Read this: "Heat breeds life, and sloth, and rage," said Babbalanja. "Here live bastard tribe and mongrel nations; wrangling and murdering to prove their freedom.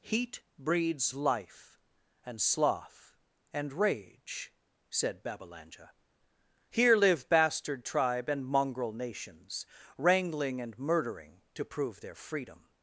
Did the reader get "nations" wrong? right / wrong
right